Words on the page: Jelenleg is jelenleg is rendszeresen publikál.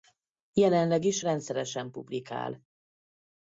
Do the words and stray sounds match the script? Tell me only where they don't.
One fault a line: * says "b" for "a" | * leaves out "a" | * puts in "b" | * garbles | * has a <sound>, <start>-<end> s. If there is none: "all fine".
* leaves out "jelenleg is"